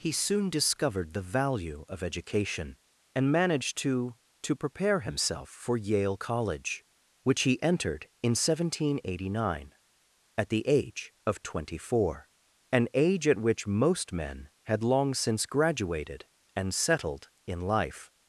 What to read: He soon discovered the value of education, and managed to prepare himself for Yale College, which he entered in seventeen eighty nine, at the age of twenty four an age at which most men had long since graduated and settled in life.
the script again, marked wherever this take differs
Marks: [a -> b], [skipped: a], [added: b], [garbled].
He soon discovered the value of education, and managed to [added: to] prepare himself for Yale College, which he entered in seventeen eighty nine, at the age of twenty four an age at which most men had long since graduated and settled in life.